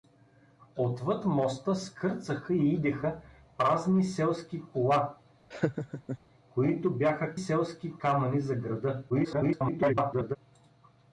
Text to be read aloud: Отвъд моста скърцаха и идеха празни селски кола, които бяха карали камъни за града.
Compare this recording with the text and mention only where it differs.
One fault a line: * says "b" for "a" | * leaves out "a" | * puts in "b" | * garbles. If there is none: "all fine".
* says "селски" for "карали"
* garbles